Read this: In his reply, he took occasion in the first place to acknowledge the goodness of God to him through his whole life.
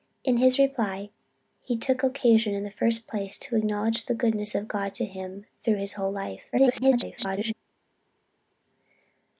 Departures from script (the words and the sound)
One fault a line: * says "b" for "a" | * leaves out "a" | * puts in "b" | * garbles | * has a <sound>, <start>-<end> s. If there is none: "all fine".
* garbles